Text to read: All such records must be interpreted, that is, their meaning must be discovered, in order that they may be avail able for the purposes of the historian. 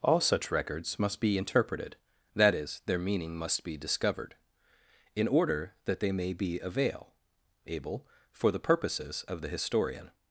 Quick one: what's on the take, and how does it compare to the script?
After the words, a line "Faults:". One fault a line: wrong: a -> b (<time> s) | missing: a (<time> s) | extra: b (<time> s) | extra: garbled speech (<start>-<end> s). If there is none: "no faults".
All such records must be interpreted, that is, their meaning must be discovered, in order that they may be avail able for the purposes of the historian.
Faults:
no faults